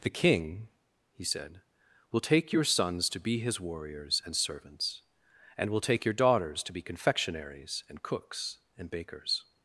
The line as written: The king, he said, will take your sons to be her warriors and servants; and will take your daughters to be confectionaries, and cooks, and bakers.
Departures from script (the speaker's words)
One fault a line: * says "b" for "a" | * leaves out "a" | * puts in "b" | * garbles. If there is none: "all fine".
* says "his" for "her"